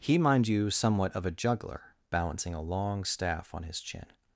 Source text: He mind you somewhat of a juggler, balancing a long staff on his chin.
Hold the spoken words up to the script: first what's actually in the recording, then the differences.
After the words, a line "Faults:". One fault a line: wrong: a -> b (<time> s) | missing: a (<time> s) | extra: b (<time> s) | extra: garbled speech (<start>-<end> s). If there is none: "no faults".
He mind you somewhat of a juggler, balancing a long staff on his chin.
Faults:
no faults